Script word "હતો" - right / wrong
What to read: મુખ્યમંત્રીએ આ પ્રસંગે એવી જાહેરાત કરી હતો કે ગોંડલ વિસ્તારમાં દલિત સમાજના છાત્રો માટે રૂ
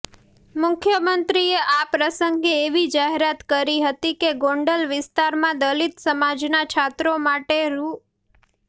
wrong